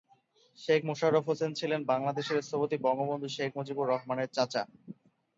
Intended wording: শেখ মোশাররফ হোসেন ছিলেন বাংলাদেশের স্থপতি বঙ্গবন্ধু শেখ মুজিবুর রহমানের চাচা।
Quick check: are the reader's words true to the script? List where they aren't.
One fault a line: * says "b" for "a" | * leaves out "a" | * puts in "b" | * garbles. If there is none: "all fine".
all fine